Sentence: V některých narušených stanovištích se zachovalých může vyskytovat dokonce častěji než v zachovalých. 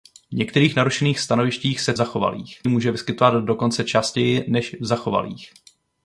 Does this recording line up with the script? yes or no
yes